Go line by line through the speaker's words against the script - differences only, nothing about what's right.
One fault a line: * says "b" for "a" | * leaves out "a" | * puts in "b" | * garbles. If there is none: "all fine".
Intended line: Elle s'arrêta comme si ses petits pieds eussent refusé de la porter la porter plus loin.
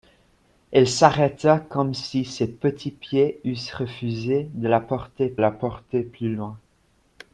all fine